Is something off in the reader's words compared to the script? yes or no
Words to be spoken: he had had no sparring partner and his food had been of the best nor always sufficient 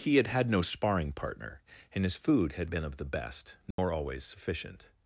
no